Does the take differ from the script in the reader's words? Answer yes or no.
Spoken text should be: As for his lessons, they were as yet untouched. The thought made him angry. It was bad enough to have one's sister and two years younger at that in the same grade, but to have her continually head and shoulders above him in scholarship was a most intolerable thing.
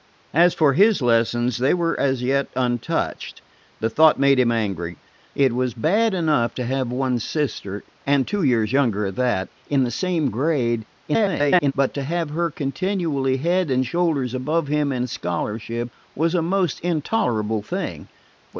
yes